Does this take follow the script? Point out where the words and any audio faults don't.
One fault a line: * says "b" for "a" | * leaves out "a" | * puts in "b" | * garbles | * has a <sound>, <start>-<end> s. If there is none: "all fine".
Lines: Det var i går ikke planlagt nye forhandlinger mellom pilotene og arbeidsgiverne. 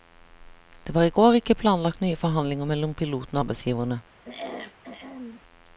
* has a throat clearing, 4.2-5.4 s